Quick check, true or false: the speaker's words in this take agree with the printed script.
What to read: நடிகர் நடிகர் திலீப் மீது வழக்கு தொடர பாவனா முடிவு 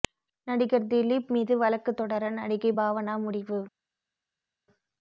false